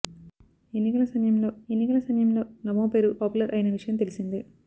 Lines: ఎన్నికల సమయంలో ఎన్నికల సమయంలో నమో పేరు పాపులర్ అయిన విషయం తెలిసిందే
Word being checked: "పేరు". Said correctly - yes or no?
yes